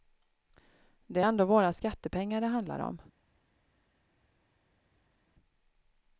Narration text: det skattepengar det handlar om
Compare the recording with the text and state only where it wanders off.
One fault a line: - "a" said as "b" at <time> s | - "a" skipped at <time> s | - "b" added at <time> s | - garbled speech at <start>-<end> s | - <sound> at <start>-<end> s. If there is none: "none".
- "är ändå våra" added at 1.2 s